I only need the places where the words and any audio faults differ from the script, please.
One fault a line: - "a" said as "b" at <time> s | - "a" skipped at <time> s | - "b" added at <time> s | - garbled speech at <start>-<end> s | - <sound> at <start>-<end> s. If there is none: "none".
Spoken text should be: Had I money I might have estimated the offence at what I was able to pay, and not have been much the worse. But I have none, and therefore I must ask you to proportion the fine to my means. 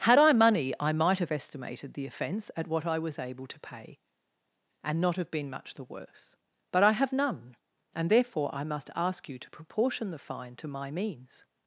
none